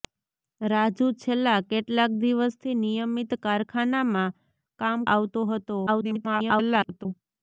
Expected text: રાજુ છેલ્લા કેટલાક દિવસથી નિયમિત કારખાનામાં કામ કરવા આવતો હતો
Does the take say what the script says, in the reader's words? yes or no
no